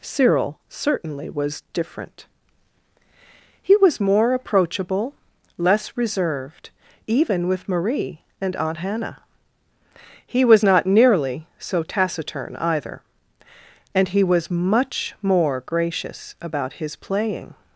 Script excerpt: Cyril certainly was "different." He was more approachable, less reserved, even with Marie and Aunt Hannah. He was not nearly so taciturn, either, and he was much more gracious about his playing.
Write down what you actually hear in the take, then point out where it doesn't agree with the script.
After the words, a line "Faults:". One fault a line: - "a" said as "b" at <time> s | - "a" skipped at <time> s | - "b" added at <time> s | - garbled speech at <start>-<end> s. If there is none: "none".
Cyril certainly was "different." He was more approachable, less reserved, even with Marie and Aunt Hannah. He was not nearly so taciturn, either, and he was much more gracious about his playing.
Faults:
none